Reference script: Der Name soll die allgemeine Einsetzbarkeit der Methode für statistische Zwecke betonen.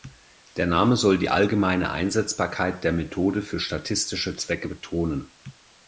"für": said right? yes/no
yes